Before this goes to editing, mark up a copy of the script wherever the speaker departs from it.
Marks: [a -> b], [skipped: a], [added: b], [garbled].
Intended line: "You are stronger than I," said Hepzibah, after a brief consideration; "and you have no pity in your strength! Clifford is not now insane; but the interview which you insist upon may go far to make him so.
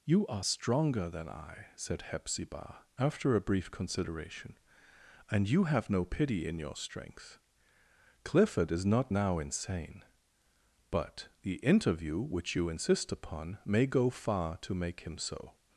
"You are stronger than I," said Hepzibah, after a brief consideration; "and you have no pity in your strength! Clifford is not now insane; but the interview which you insist upon may go far to make him so.